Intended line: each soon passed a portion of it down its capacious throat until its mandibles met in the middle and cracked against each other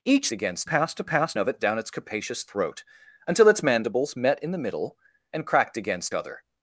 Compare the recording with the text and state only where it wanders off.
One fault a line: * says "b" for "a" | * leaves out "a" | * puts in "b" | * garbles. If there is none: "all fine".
* says "against" for "soon"
* says "passed" for "portion"
* leaves out "each"